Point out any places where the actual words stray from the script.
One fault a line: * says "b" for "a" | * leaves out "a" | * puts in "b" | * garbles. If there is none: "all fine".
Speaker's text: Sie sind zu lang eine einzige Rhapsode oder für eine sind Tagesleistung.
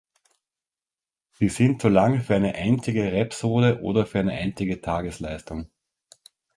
* puts in "für"
* says "einzige" for "sind"